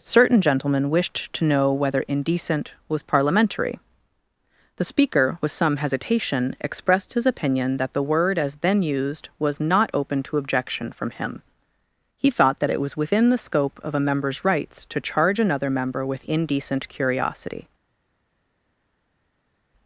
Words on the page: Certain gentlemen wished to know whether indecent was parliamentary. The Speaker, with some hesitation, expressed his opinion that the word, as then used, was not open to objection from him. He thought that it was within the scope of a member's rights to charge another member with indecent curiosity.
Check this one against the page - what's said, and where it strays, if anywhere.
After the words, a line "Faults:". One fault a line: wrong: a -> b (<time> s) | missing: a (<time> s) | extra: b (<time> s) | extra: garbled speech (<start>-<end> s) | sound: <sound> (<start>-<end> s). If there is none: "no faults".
Certain gentlemen wished to know whether indecent was parliamentary. The Speaker, with some hesitation, expressed his opinion that the word, as then used, was not open to objection from him. He thought that it was within the scope of a member's rights to charge another member with indecent curiosity.
Faults:
no faults